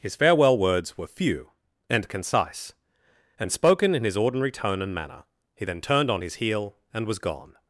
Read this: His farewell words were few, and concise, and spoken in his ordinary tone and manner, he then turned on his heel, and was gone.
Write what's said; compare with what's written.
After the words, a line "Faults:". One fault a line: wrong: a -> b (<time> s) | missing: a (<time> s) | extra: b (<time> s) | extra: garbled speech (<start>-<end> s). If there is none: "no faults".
His farewell words were few, and concise, and spoken in his ordinary tone and manner, he then turned on his heel, and was gone.
Faults:
no faults